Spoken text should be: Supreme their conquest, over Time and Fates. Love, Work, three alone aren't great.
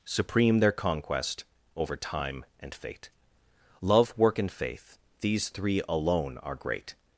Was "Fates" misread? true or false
true